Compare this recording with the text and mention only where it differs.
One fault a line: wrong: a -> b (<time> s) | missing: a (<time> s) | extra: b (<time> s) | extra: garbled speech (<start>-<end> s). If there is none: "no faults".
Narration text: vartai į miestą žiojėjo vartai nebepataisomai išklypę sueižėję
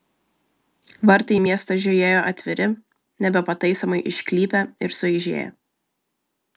wrong: vartai -> atviri (2.3 s)
extra: ir (4.9 s)